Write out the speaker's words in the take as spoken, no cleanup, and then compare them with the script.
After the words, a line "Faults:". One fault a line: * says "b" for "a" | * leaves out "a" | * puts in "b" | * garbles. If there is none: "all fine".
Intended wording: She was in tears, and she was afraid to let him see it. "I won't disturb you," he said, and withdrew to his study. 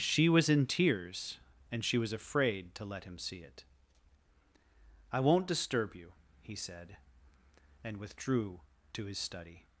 She was in tears, and she was afraid to let him see it. "I won't disturb you," he said, and withdrew to his study.
Faults:
all fine